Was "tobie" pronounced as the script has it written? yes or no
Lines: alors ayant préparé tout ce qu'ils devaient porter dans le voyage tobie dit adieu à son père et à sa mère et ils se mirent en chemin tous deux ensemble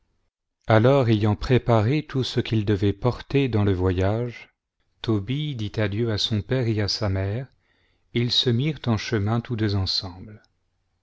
yes